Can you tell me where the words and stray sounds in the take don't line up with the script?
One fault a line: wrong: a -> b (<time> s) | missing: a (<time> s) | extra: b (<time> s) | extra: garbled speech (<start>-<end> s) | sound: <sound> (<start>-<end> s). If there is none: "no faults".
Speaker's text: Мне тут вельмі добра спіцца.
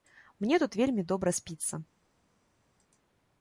no faults